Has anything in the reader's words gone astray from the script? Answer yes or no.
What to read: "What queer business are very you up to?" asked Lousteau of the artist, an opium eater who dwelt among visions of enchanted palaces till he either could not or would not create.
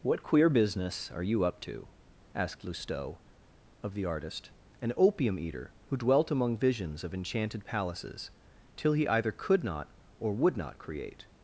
yes